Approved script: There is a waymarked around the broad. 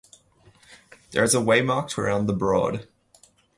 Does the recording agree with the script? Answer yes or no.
yes